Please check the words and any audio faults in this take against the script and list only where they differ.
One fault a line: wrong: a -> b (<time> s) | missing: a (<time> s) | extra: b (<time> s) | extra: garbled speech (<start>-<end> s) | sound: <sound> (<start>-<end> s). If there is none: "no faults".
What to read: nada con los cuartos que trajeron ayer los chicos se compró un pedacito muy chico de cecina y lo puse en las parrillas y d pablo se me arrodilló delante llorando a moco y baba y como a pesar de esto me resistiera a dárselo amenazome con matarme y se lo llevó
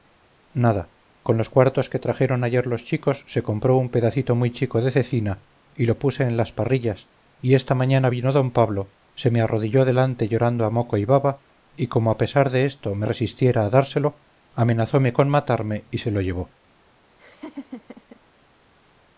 extra: esta mañana vino (7.5 s)
sound: laugh (17.2-18.2 s)